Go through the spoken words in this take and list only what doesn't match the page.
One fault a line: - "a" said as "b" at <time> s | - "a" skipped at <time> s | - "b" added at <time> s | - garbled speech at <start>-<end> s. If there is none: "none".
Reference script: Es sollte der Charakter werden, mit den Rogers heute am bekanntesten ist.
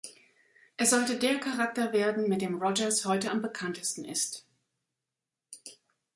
- "den" said as "dem" at 2.4 s